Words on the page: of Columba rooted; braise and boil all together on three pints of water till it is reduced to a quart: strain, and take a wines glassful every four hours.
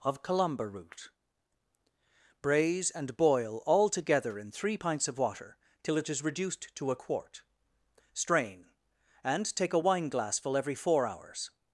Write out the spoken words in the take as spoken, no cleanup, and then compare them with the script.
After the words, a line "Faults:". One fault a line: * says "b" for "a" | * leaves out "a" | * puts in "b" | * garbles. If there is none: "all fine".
of Columba root; braise and boil all together in three pints of water till it is reduced to a quart: strain, and take a wine glassful every four hours.
Faults:
* says "root" for "rooted"
* says "in" for "on"
* says "wine" for "wines"